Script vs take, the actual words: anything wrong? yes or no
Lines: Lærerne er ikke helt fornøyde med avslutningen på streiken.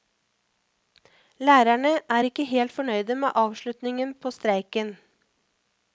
no